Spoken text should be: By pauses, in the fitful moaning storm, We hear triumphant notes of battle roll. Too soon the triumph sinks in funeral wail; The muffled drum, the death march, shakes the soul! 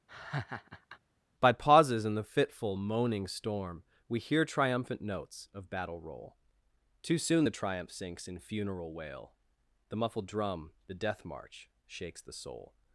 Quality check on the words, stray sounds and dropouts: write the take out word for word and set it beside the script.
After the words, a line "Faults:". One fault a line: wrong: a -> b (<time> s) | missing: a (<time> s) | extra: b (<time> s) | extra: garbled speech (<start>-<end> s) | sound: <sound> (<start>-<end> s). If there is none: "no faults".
By pauses, in the fitful moaning storm, We hear triumphant notes of battle roll. Too soon the triumph sinks in funeral wail; The muffled drum, the death march, shakes the soul!
Faults:
sound: laugh (0.1-1.0 s)